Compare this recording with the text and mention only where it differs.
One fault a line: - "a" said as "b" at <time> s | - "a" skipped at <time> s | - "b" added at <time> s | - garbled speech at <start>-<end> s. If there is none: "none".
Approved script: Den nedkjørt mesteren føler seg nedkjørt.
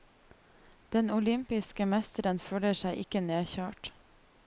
- "nedkjørt" said as "olympiske" at 1.2 s
- "ikke" added at 3.0 s